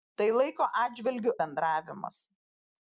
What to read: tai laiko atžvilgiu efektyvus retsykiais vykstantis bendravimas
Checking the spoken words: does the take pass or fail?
fail